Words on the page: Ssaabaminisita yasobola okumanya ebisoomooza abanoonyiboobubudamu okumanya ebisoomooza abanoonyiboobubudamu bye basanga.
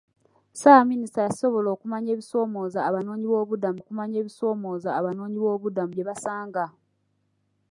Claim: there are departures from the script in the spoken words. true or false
false